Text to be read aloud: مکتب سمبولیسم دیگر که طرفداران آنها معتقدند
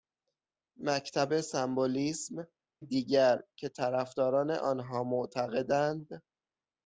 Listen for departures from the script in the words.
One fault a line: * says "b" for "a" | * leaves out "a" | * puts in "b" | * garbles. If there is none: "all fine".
all fine